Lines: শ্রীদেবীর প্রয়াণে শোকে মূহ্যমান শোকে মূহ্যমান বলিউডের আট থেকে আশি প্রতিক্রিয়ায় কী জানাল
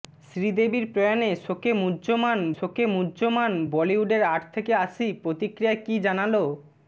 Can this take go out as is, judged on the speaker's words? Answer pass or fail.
pass